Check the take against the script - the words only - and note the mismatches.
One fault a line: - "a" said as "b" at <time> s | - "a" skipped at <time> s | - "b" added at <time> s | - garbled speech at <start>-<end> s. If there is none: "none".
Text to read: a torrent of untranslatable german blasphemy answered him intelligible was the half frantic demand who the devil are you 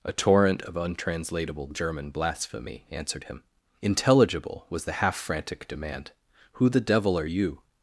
none